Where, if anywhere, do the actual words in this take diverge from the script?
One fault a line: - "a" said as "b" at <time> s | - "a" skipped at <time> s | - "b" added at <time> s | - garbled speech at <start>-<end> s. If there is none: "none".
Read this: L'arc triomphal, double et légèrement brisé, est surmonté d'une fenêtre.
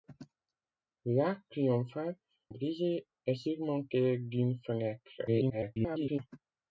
- "double et légèrement" skipped at 2.2 s
- garbled speech at 5.3-6.2 s